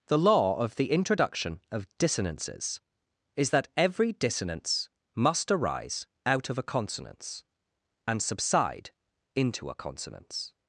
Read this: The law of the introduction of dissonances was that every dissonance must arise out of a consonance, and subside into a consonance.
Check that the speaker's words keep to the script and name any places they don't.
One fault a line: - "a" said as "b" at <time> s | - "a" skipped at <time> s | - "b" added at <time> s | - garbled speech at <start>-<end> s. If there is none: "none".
- "was" said as "is" at 3.4 s